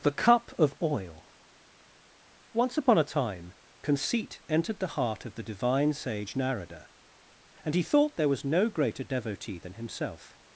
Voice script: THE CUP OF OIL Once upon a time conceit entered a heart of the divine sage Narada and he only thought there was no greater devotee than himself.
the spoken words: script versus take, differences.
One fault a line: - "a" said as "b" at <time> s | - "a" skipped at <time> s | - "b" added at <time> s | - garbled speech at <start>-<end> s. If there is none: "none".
- "a" said as "the" at 4.8 s
- "only" skipped at 7.8 s